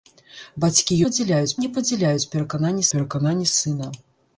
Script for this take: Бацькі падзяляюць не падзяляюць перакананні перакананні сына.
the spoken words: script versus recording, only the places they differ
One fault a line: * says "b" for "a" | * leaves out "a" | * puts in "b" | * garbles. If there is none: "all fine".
all fine